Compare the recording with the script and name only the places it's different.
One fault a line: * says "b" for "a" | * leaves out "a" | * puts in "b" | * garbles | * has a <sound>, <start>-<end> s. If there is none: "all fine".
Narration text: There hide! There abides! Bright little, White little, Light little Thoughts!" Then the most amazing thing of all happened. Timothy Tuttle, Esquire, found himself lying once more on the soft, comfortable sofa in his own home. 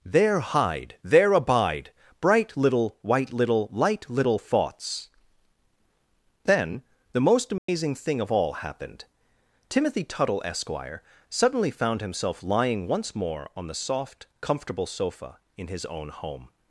* says "abide" for "abides"
* has a dropout, 7.6-7.7 s
* puts in "suddenly"